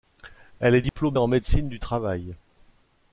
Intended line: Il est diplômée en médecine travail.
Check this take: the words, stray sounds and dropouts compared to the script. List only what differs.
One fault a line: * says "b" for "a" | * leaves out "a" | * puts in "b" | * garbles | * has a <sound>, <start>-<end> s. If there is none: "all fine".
* says "Elle" for "Il"
* has a dropout, 0.9-1.0 s
* puts in "du"